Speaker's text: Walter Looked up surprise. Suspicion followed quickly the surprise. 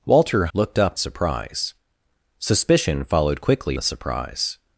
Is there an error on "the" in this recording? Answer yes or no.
no